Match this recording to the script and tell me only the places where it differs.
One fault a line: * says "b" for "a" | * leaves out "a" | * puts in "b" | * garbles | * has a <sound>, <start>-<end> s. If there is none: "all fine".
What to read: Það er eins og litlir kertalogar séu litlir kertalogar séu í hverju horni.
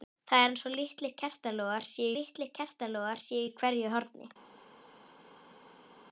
all fine